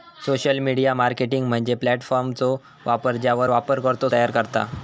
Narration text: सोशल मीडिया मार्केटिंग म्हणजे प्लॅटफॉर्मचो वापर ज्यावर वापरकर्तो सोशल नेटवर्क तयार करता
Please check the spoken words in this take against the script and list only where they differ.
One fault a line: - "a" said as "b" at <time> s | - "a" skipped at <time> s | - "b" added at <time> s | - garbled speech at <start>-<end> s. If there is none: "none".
- "सोशल नेटवर्क" skipped at 4.1 s